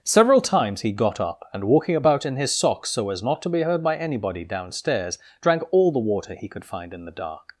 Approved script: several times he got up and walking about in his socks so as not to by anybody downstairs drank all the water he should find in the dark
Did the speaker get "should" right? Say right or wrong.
wrong